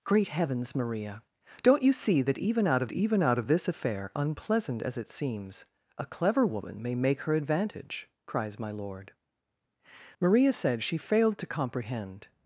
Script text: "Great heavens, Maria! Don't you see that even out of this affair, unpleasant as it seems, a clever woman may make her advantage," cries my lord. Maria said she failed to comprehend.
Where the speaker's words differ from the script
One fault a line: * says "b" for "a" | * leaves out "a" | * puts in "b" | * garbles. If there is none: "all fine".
* puts in "even out of"